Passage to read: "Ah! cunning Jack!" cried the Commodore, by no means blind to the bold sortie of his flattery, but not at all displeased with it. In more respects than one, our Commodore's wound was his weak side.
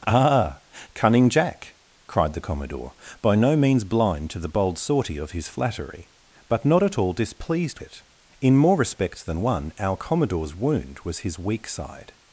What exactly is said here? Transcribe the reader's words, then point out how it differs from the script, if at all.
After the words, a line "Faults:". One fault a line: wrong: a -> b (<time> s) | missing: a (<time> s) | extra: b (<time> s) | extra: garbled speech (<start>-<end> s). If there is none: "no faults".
"Ah! cunning Jack!" cried the Commodore, by no means blind to the bold sortie of his flattery, but not at all displeased it. In more respects than one, our Commodore's wound was his weak side.
Faults:
missing: with (7.8 s)